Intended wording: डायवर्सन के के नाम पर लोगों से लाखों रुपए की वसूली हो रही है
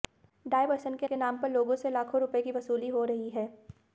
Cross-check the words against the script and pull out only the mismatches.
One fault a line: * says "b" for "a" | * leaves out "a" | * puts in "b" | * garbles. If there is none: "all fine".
all fine